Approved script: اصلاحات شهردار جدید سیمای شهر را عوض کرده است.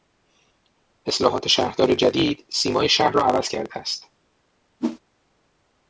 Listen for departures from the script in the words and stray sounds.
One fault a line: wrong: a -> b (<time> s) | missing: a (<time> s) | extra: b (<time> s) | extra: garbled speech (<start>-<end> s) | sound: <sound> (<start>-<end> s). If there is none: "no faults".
sound: whoosh (4.8-5.0 s)